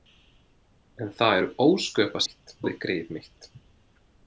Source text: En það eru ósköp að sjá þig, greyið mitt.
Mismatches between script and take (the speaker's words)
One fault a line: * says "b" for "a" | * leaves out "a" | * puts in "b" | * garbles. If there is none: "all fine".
* says "mitt" for "sjá"